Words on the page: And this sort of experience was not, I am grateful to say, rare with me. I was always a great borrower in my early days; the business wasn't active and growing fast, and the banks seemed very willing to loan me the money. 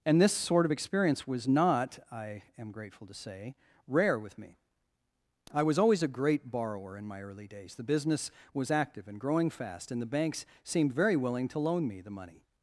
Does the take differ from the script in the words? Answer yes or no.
yes